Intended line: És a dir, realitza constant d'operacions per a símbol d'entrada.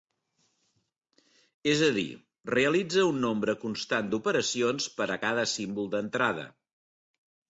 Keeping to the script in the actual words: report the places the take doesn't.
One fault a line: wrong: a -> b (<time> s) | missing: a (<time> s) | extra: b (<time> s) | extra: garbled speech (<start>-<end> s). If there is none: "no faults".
extra: un nombre (3.1 s)
extra: cada (5.2 s)